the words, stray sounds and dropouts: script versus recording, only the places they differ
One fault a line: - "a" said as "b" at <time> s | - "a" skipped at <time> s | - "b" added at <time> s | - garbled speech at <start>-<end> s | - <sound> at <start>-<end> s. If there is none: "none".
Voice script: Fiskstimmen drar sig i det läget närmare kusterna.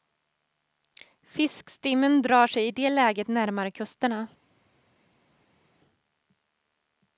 none